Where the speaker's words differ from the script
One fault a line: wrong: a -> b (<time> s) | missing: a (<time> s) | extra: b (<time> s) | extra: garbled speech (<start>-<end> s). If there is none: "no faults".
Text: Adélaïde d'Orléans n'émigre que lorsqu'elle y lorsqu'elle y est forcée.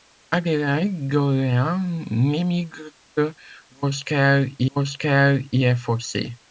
no faults